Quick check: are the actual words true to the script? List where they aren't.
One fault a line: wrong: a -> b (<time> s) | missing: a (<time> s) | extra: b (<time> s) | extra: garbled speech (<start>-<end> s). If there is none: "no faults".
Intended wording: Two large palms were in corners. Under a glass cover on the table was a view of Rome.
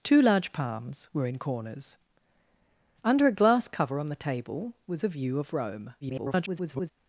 extra: garbled speech (6.0-6.9 s)